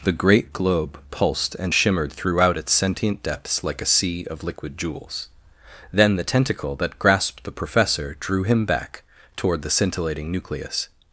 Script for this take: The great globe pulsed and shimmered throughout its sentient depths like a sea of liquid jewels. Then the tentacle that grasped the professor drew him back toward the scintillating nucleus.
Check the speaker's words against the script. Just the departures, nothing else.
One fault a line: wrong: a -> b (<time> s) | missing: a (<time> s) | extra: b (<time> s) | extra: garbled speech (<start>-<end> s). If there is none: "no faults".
no faults